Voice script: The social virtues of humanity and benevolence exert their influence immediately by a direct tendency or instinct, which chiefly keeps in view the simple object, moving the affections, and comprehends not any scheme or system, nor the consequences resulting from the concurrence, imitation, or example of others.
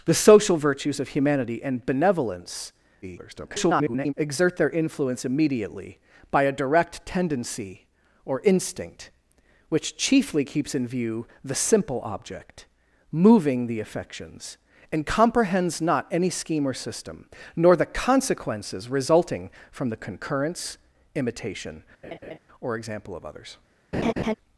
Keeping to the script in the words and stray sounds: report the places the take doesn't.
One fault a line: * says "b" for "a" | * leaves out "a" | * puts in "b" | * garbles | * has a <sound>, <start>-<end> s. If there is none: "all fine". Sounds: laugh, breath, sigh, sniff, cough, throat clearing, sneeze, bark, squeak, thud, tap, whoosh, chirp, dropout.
* garbles
* has a laugh, 22.0-22.4 s
* has a laugh, 23.9-24.3 s